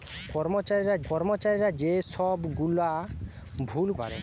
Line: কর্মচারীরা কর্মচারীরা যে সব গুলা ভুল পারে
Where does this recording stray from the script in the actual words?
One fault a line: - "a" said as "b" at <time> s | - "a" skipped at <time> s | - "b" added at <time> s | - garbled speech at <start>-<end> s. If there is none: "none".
none